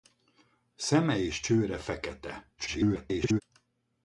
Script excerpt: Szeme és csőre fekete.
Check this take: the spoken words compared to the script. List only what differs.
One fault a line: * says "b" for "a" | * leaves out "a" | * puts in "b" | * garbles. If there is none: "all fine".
* garbles